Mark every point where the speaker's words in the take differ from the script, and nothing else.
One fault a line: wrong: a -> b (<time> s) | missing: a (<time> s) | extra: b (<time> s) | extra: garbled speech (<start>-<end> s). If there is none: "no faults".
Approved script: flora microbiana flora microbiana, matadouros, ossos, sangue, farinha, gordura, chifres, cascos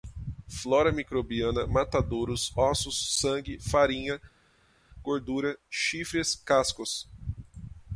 missing: flora microbiana (1.7 s)